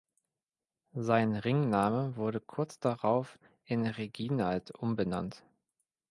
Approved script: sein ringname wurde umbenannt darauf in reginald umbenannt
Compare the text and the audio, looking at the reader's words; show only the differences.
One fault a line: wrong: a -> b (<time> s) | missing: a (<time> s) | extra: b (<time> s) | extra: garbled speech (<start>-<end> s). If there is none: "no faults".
wrong: umbenannt -> kurz (2.4 s)